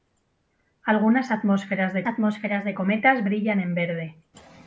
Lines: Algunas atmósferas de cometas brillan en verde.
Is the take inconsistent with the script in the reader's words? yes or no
yes